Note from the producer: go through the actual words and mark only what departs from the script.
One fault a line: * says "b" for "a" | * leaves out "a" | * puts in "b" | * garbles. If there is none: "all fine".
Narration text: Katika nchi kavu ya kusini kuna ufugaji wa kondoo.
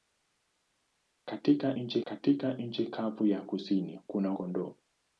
* puts in "katika nchi"
* leaves out "ufugaji wa"